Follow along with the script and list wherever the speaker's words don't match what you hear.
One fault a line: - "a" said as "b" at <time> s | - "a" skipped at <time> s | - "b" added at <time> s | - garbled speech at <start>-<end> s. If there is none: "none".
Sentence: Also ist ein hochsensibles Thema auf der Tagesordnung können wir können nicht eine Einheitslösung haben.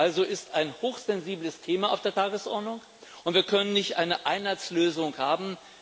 - "können" said as "und" at 3.2 s